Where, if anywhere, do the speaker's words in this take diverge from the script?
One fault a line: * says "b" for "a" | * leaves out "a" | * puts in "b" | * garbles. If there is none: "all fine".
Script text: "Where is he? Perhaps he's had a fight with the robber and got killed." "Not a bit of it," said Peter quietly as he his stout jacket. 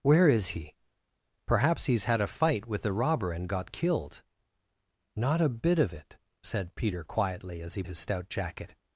all fine